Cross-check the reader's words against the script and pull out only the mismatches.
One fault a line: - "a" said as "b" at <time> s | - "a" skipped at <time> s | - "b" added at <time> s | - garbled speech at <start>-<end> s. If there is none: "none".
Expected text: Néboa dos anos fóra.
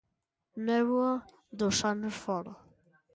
none